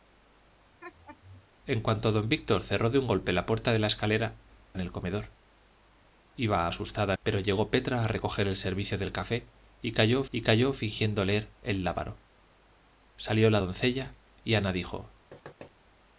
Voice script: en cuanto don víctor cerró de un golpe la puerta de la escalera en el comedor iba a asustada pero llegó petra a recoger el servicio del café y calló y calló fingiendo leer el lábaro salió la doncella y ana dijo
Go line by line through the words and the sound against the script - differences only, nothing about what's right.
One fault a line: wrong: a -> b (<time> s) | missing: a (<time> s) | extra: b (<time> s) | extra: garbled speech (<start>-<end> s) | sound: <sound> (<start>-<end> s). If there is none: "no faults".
sound: laugh (0.8-1.5 s)
sound: thud (15.3-15.7 s)